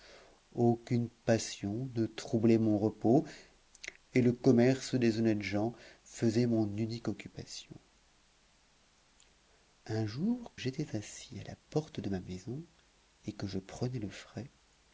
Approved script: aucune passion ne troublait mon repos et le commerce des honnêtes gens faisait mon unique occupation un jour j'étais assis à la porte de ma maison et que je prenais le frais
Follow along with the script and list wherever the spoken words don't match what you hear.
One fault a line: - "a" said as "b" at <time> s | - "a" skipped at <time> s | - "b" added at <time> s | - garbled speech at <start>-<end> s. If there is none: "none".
none